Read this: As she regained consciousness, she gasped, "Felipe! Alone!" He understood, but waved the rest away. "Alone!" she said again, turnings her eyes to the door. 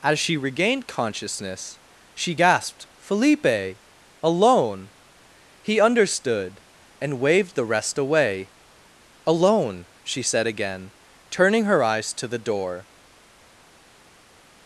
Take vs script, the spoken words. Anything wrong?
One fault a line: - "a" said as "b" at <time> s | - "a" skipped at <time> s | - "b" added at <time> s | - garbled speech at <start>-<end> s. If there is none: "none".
- "but" said as "and" at 7.0 s
- "turnings" said as "turning" at 11.3 s